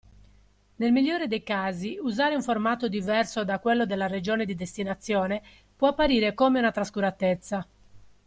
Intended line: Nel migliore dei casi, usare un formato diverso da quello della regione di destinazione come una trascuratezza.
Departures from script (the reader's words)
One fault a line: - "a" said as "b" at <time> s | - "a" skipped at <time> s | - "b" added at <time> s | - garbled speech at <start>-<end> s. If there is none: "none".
- "può apparire" added at 5.7 s